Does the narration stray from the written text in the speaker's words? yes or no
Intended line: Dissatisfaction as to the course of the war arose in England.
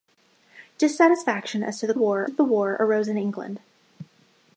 yes